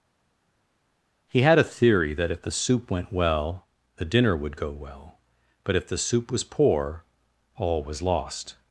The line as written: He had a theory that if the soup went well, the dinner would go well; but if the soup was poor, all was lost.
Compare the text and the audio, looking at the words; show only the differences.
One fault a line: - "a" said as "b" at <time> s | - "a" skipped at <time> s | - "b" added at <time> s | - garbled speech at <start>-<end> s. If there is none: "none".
none